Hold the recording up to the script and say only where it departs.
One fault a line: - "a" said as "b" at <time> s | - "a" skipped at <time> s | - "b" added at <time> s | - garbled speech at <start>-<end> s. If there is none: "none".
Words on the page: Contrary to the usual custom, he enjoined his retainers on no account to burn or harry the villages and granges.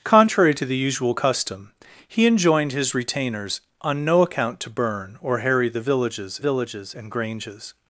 - "villages" added at 6.4 s